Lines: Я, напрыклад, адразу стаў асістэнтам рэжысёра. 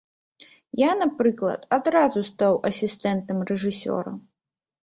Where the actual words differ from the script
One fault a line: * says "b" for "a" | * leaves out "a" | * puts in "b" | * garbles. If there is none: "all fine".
all fine